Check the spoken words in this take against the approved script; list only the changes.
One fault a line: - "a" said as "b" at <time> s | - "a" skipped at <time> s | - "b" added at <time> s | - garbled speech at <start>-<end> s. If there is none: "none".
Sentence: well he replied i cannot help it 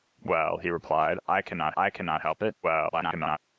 - "i cannot" added at 1.8 s
- garbled speech at 2.6-3.4 s